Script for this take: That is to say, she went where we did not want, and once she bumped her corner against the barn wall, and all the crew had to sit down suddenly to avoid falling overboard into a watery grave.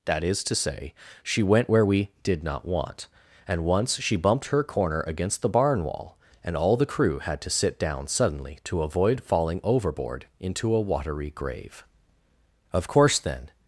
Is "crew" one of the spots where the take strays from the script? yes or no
no